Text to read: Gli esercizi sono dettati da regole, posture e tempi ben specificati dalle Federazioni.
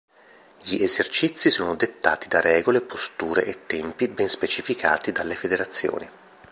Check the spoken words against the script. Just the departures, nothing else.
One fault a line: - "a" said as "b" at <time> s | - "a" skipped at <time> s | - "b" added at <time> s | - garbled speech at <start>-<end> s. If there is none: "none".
none